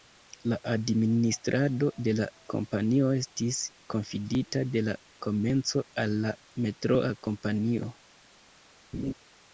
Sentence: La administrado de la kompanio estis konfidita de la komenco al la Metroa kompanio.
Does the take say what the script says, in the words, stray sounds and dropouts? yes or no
no